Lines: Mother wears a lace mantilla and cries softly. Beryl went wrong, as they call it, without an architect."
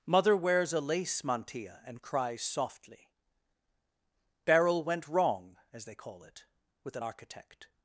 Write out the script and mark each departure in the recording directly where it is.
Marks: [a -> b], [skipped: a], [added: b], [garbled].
Mother wears a lace mantilla and cries softly. Beryl went wrong, as they call it, [without -> with] an architect."